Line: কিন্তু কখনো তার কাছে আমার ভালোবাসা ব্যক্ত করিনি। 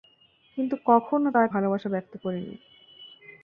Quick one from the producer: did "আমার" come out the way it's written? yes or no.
no